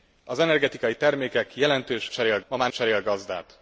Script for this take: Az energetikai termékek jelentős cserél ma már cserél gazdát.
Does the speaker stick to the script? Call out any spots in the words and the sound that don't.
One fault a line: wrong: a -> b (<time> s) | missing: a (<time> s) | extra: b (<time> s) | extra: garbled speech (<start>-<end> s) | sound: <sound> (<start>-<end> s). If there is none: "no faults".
no faults